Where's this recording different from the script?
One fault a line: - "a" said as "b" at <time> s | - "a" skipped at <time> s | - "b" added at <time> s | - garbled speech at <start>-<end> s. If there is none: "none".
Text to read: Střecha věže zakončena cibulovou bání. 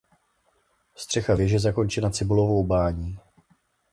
none